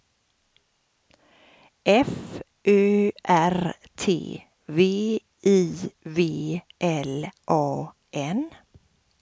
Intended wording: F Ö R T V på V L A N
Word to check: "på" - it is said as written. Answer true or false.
false